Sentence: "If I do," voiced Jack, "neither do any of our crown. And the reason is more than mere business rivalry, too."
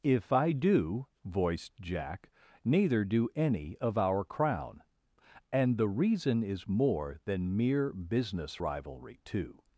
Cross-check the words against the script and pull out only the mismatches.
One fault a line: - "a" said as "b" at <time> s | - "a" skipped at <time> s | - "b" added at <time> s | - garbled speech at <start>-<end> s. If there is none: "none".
none